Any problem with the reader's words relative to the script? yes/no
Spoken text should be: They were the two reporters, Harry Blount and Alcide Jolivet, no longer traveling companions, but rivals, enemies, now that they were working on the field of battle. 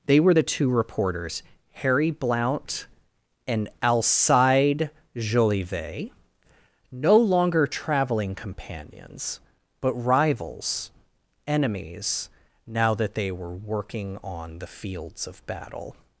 yes